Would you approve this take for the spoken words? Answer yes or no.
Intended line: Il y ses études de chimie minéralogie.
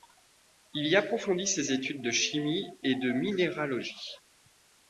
no